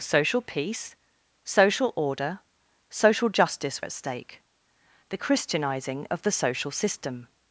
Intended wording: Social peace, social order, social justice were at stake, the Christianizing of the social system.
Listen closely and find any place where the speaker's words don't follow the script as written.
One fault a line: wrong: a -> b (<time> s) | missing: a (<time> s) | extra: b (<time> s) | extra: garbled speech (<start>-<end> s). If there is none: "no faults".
missing: were (3.8 s)